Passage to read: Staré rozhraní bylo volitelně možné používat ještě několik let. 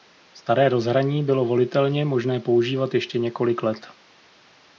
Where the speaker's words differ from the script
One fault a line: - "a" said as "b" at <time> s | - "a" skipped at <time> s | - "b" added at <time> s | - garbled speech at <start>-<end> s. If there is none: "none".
none